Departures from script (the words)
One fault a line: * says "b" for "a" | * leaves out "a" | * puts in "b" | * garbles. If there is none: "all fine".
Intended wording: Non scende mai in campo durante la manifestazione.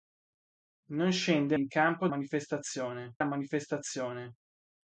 * leaves out "mai"
* says "manifestazione" for "durante"